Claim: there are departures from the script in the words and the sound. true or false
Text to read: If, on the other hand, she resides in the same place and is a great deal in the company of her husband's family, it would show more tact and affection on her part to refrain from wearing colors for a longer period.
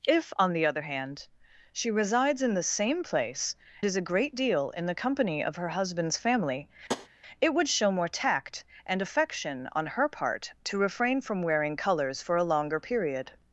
true